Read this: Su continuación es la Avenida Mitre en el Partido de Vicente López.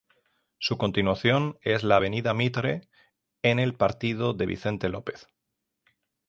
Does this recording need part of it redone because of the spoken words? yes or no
no